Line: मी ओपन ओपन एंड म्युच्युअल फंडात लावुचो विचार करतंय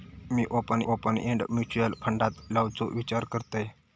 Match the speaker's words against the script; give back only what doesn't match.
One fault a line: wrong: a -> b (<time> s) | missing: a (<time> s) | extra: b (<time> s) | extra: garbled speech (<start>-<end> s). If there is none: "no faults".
no faults